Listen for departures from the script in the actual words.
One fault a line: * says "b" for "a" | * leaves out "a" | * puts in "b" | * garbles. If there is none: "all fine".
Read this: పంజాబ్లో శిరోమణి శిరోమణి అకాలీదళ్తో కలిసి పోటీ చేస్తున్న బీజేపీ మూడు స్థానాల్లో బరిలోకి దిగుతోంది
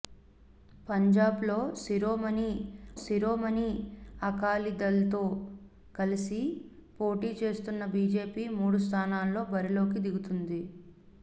all fine